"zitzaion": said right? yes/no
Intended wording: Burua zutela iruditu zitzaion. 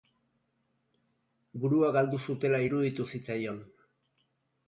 yes